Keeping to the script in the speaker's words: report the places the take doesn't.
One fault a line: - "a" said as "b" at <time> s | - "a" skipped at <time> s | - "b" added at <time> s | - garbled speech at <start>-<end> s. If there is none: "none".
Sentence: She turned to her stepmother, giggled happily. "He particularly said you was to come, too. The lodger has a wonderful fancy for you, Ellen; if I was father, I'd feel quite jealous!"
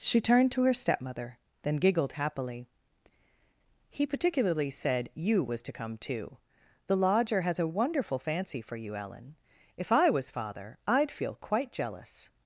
- "then" added at 1.6 s